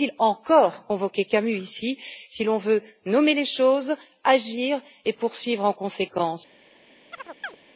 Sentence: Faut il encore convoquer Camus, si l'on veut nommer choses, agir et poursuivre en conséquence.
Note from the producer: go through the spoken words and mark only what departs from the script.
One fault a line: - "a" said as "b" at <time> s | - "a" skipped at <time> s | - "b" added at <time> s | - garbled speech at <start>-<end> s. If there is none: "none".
- "ici" added at 1.6 s
- "les" added at 3.3 s